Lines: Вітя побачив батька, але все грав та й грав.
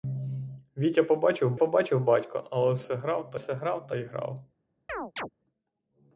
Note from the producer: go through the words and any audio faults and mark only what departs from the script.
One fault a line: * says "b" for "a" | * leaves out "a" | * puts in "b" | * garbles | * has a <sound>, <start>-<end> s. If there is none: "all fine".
* puts in "побачив"
* puts in "все грав та"
* has a chirp, 4.9-5.3 s